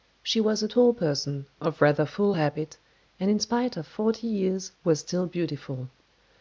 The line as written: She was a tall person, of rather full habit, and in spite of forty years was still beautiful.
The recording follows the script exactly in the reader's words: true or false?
true